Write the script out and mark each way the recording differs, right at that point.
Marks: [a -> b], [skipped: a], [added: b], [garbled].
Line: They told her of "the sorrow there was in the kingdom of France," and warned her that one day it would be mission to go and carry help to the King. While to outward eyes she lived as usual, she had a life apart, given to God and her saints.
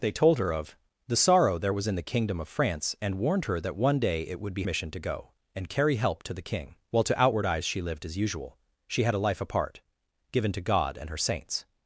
They told her of "the sorrow there was in the kingdom of France," and warned her that one day it would be mission to go and carry help to the King. While to outward eyes she lived as usual, she had a life apart, given to God and her saints.